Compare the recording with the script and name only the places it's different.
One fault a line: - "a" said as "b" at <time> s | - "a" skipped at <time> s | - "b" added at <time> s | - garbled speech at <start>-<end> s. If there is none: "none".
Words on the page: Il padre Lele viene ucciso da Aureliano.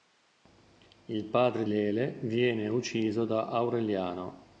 none